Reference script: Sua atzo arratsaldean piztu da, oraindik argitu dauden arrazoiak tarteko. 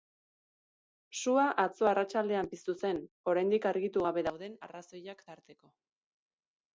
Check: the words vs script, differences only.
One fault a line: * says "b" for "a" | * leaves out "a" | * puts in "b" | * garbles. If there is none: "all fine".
* says "zen" for "da"
* puts in "gabe"